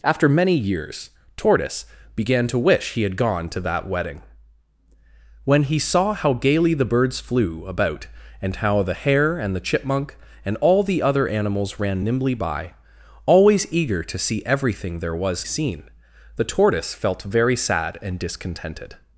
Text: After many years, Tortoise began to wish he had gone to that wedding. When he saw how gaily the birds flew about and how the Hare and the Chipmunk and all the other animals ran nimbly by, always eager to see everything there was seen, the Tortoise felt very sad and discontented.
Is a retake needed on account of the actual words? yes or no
no